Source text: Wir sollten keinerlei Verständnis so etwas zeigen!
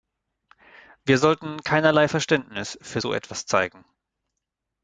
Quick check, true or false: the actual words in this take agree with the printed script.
false